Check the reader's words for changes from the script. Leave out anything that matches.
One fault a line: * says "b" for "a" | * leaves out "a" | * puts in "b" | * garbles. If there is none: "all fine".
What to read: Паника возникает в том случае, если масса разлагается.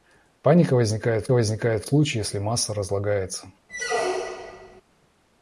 * says "возникает" for "том"